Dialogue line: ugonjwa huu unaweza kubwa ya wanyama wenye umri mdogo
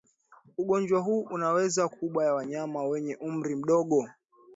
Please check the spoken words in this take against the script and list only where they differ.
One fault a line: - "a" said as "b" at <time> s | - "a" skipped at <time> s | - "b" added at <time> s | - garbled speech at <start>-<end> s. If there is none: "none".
none